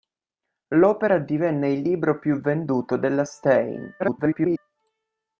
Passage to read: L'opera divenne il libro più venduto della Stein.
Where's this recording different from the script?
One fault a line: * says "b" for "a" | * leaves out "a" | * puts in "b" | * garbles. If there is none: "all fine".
* garbles